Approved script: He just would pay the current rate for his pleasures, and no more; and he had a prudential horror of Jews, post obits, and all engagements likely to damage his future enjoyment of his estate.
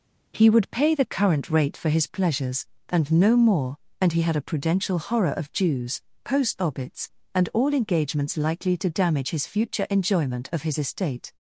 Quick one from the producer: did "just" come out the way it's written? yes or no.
no